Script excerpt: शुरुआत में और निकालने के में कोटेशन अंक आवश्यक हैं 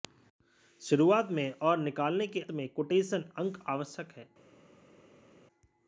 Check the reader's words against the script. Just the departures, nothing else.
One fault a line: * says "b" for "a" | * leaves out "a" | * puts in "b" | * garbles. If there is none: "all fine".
all fine